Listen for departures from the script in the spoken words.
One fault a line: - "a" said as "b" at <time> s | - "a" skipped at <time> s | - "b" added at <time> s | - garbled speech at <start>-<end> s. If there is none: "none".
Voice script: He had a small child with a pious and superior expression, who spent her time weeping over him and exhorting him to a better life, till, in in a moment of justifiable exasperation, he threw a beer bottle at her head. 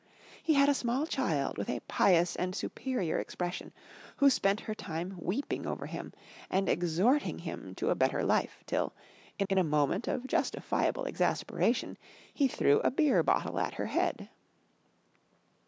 none